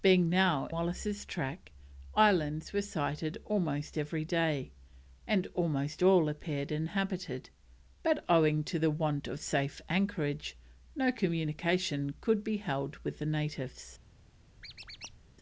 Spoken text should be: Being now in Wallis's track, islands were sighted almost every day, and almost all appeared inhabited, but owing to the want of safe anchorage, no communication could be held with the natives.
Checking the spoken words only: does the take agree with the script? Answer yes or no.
no